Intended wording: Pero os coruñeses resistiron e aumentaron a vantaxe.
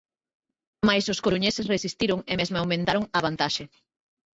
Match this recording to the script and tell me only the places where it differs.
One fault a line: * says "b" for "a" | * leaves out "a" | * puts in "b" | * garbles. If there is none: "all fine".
* says "Mais" for "Pero"
* puts in "mesmo"